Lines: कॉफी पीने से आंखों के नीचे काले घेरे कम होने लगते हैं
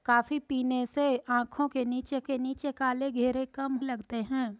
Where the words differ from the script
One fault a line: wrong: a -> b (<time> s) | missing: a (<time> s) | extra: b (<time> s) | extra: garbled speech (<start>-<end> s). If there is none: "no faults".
extra: के नीचे (2.2 s)
missing: होने (3.7 s)